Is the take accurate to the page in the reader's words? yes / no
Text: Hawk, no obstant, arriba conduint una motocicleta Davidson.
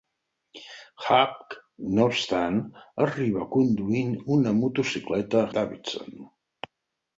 yes